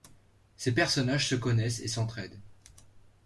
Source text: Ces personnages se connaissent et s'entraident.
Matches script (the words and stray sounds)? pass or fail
pass